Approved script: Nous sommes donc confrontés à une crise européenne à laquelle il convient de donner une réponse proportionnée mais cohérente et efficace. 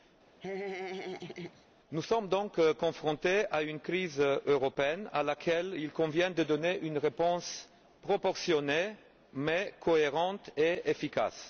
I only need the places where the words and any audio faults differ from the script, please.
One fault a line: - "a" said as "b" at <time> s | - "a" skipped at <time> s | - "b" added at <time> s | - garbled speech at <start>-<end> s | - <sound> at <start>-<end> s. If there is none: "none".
- laugh at 0.4-1.7 s